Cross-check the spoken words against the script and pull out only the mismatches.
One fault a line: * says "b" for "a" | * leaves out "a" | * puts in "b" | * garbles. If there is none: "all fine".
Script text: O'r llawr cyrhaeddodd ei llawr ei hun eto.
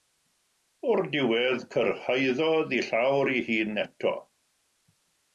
* says "diwedd" for "llawr"